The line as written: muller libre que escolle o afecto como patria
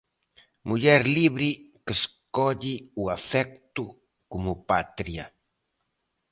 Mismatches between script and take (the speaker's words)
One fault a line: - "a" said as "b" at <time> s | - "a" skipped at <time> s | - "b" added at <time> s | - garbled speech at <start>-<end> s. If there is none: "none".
none